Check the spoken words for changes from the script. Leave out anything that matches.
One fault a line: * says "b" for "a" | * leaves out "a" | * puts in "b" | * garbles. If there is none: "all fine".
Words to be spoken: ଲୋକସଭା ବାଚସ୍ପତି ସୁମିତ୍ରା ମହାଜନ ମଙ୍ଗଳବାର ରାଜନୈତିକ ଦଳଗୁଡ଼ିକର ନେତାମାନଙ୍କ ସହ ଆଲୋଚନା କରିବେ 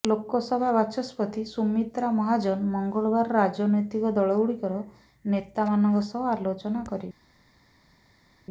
all fine